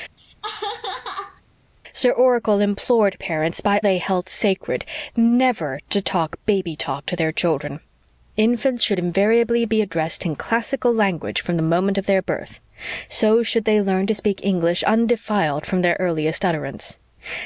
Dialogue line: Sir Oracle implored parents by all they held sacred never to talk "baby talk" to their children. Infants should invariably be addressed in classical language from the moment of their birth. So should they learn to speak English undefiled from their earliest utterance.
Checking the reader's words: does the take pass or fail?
fail